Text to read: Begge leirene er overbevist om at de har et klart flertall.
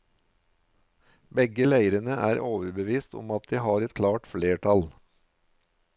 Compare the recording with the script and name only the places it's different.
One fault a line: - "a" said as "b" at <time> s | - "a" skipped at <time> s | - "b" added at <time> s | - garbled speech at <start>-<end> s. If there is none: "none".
none